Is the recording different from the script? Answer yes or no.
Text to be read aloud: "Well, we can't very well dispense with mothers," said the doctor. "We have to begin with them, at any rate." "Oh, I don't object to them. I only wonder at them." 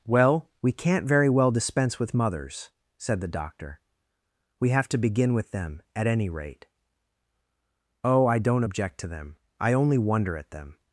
no